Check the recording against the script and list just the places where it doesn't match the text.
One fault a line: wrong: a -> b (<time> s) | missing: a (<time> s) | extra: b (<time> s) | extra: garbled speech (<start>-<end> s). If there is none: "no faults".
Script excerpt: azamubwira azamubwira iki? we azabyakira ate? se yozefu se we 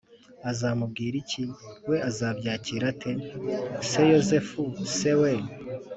missing: azamubwira (1.1 s)